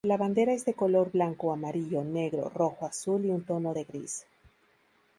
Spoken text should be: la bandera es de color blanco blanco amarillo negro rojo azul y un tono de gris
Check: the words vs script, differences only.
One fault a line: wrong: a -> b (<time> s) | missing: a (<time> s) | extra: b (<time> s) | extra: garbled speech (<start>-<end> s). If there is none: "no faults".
missing: blanco (1.5 s)